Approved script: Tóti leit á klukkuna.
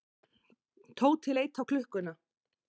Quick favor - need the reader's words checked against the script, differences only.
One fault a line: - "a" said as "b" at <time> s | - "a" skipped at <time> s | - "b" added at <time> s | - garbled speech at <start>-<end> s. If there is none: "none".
none